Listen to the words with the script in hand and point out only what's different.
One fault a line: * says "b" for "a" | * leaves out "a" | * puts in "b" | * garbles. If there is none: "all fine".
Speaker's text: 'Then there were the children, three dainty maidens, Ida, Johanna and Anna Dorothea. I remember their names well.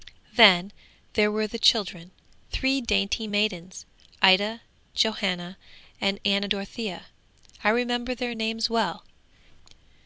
all fine